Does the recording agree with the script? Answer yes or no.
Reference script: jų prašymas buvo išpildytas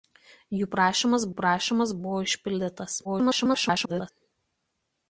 no